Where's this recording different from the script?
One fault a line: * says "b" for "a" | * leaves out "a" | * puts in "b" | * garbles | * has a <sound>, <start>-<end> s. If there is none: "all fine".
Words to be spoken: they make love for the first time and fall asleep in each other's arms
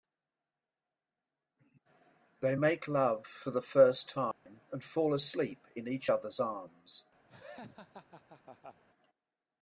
* has a dropout, 4.3-4.5 s
* has a laugh, 7.3-8.8 s